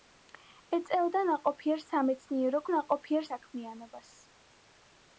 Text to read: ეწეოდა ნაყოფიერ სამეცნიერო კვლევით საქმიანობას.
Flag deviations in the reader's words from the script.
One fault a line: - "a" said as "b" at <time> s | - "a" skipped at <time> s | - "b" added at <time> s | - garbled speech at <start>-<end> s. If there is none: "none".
- "კვლევით" said as "ნაყოფიერ" at 2.7 s